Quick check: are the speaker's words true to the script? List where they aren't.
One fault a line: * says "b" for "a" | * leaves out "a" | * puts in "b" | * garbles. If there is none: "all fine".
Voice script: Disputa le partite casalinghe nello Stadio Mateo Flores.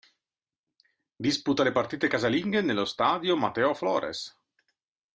all fine